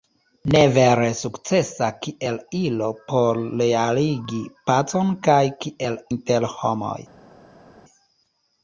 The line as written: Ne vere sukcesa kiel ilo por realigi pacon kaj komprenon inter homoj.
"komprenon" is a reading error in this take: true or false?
true